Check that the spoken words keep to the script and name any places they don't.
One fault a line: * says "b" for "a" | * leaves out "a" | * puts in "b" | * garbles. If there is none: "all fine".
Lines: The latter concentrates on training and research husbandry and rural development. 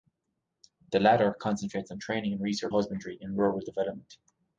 all fine